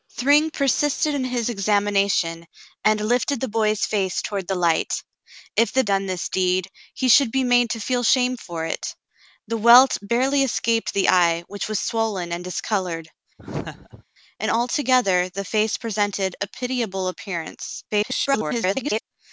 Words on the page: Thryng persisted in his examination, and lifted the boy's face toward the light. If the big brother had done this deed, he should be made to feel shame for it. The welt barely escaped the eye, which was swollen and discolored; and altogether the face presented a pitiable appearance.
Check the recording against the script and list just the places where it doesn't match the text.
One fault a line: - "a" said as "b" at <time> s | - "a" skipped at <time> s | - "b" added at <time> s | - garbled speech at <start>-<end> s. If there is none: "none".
- "big brother had" skipped at 5.8 s
- garbled speech at 17.9-19.0 s